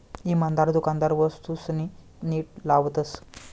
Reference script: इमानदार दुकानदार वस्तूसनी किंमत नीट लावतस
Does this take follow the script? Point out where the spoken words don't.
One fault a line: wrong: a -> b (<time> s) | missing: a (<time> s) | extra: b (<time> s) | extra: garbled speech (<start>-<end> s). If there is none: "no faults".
missing: किंमत (1.9 s)